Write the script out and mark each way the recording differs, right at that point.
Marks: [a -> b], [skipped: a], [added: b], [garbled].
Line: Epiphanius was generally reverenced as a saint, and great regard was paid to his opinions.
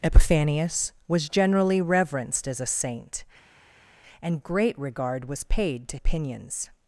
Epiphanius was generally reverenced as a saint, and great regard was paid to [skipped: his] opinions.